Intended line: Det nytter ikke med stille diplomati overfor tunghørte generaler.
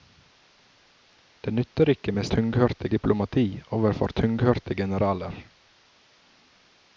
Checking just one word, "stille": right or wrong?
wrong